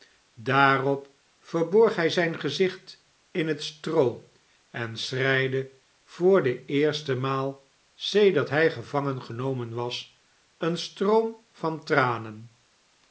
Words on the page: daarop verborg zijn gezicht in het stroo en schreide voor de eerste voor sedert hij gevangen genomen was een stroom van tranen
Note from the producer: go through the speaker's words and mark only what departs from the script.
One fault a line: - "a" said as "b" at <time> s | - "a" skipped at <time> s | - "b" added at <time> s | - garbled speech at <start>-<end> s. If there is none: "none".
- "hij" added at 2.0 s
- "voor" said as "maal" at 7.2 s